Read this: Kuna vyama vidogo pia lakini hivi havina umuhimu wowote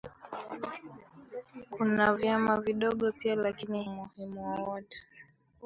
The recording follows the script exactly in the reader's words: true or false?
false